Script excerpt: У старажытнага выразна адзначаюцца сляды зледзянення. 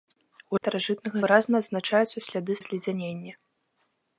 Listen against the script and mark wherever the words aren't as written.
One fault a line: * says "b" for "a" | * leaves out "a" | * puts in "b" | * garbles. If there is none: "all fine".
all fine